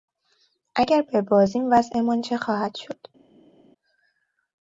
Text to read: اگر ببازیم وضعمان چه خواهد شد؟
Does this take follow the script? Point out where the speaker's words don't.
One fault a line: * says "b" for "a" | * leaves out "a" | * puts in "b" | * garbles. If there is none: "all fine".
all fine